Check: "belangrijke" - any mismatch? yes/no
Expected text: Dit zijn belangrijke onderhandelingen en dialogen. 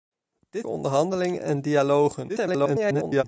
yes